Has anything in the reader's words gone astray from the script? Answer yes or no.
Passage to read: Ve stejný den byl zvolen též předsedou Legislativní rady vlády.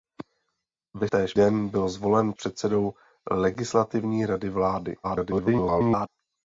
yes